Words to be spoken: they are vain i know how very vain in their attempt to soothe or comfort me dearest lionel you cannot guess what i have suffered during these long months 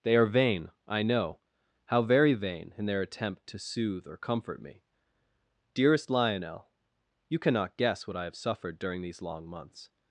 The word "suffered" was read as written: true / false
true